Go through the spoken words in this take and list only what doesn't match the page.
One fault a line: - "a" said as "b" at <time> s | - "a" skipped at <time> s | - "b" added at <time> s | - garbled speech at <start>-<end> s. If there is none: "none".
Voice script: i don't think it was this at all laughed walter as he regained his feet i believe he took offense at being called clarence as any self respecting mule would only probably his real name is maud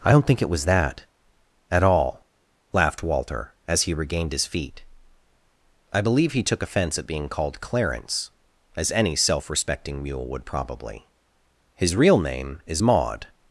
- "this" said as "that" at 0.6 s
- "only" skipped at 10.4 s